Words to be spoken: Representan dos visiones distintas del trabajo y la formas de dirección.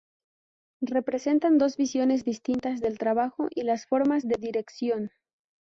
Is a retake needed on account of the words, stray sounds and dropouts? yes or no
yes